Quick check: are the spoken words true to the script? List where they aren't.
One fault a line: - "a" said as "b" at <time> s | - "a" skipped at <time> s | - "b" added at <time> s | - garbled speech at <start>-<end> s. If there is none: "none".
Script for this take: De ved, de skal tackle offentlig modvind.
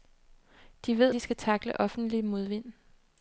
none